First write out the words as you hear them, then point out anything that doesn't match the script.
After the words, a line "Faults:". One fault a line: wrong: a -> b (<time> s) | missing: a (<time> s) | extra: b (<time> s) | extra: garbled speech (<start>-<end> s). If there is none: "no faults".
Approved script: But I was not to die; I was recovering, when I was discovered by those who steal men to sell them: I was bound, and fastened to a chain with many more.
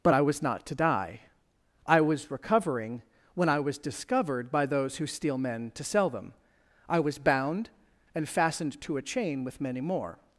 But I was not to die; I was recovering, when I was discovered by those who steal men to sell them: I was bound, and fastened to a chain with many more.
Faults:
no faults